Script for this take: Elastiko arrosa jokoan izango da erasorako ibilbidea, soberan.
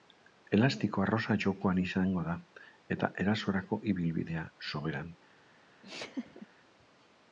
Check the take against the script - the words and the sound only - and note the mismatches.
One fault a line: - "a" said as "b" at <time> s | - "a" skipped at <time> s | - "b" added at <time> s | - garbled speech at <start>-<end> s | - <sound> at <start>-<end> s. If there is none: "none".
- "eta" added at 3.0 s
- laugh at 5.8-6.5 s